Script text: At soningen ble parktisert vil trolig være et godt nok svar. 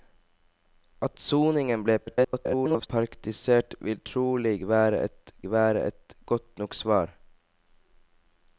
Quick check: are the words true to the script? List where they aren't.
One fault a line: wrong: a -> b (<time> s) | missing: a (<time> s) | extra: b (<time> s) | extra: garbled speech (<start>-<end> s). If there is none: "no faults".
extra: garbled speech (2.1-2.9 s)
extra: være et (5.5 s)